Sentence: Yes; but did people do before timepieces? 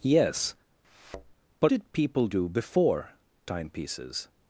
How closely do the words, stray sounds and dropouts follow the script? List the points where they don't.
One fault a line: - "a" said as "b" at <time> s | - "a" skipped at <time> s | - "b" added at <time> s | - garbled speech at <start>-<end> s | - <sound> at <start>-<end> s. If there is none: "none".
- thud at 0.8-1.3 s